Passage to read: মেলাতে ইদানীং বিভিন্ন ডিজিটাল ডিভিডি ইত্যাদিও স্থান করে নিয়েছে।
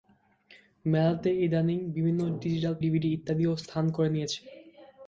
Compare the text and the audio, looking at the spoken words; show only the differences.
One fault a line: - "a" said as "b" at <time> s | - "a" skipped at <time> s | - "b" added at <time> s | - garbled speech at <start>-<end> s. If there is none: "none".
none